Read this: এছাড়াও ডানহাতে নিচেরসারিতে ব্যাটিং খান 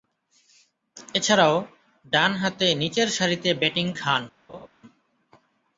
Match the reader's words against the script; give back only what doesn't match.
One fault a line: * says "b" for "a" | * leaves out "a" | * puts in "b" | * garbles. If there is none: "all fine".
all fine